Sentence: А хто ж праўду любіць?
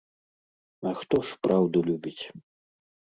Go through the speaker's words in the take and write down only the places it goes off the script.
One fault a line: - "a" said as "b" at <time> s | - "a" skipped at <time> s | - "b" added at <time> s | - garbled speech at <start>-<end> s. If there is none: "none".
none